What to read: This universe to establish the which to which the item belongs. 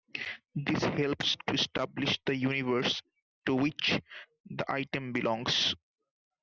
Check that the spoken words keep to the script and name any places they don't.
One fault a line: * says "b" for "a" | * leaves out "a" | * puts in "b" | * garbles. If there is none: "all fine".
* says "helps" for "universe"
* says "universe" for "which"